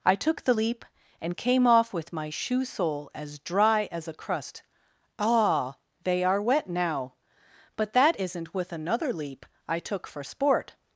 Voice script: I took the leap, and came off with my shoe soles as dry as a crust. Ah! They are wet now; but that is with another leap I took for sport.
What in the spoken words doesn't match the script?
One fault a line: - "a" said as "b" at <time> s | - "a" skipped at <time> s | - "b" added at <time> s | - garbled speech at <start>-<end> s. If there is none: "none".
- "soles" said as "sole" at 2.6 s
- "is" said as "isn't" at 8.2 s